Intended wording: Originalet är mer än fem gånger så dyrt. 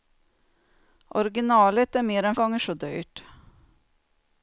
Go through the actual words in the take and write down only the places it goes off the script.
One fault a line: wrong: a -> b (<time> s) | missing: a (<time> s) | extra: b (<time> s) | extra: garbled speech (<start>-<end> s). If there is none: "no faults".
missing: fem (2.4 s)